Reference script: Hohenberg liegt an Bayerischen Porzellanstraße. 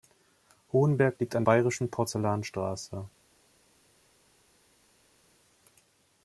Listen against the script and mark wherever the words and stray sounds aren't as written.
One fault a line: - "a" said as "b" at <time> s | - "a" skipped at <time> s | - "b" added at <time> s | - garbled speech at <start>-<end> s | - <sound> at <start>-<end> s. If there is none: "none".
none